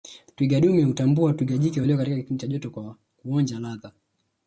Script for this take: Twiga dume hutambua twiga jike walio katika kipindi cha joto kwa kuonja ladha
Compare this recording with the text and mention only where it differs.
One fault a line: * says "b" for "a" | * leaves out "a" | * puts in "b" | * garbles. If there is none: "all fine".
all fine